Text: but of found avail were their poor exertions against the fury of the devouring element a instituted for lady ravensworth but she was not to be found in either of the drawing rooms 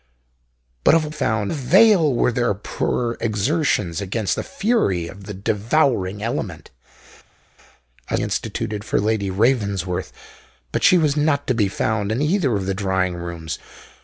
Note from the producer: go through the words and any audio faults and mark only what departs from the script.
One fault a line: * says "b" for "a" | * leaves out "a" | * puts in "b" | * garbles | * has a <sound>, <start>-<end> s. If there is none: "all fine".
all fine